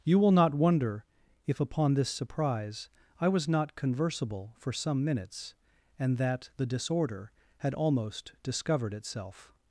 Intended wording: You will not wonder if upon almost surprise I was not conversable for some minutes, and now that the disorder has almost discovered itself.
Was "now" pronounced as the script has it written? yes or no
no